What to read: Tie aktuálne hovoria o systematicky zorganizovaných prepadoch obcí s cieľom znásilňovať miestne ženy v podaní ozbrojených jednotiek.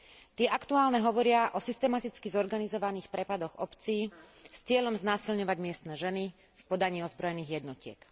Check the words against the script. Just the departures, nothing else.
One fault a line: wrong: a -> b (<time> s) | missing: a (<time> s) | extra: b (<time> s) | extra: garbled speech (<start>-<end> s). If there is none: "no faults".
no faults